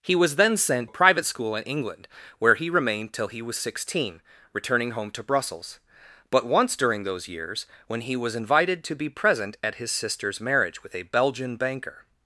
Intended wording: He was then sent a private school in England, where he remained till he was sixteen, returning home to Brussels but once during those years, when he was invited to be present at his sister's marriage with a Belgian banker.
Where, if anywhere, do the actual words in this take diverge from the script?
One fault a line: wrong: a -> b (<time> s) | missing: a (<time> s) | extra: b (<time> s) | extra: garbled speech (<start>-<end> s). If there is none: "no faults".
no faults